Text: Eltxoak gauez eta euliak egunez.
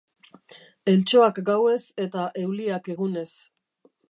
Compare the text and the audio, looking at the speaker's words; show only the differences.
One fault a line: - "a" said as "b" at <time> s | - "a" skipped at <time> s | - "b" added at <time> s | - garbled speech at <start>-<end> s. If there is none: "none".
none